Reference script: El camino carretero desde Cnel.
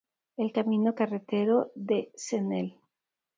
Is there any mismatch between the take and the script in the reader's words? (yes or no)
yes